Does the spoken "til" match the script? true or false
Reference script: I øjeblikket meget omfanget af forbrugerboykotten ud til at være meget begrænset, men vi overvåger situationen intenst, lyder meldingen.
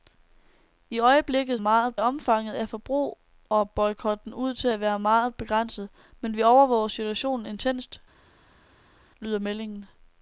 true